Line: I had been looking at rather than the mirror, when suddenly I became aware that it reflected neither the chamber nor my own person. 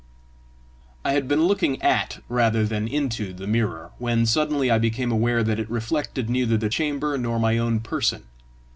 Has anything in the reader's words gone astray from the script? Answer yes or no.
yes